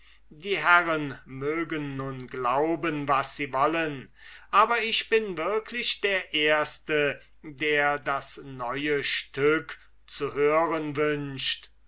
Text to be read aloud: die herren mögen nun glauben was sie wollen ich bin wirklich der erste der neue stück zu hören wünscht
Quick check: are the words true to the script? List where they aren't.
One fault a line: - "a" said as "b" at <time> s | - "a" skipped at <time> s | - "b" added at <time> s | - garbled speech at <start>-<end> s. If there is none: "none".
- "aber" added at 4.5 s
- "das" added at 8.0 s